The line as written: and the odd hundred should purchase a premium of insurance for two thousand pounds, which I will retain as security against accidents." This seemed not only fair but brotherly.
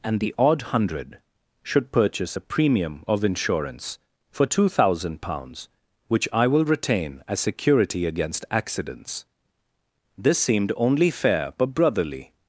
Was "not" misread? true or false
true